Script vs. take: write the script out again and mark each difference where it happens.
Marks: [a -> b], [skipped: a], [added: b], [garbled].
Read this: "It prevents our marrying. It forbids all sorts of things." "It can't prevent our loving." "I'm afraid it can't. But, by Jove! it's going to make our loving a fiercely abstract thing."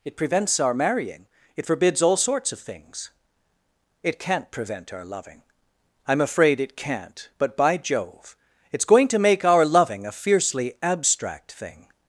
"It prevents our marrying. It forbids all sorts of things." "It can't prevent our loving." "I'm afraid it can't. But, by Jove! it's going to make our loving a fiercely abstract thing."